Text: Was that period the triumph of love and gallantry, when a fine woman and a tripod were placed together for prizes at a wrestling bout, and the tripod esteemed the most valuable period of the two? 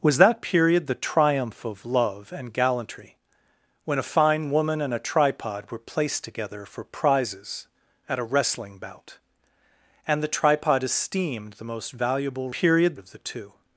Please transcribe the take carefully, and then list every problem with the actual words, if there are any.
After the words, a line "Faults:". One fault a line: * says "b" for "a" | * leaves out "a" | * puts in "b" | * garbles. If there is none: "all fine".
Was that period the triumph of love and gallantry, when a fine woman and a tripod were placed together for prizes at a wrestling bout, and the tripod esteemed the most valuable period of the two?
Faults:
all fine